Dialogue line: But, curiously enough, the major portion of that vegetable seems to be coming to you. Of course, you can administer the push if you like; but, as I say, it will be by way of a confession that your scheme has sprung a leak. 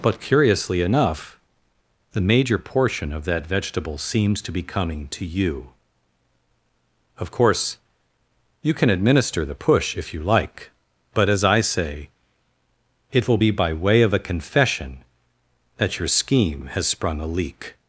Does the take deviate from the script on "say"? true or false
false